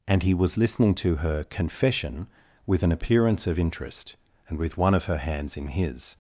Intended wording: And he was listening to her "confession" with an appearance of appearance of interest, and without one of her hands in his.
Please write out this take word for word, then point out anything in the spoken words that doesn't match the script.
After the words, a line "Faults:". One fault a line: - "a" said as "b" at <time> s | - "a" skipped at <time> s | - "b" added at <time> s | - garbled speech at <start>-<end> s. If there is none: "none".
And he was listening to her "confession" with an appearance of interest, and with one of her hands in his.
Faults:
- "appearance of" skipped at 3.6 s
- "without" said as "with" at 4.6 s